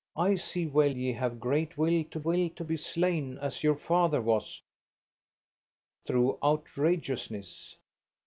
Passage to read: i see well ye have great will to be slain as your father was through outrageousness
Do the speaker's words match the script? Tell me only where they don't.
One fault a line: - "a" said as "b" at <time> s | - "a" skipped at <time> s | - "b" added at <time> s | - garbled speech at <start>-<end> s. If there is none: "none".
- "will to" added at 2.2 s